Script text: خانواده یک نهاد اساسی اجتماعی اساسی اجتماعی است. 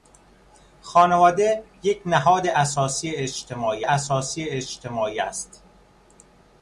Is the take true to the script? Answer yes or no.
yes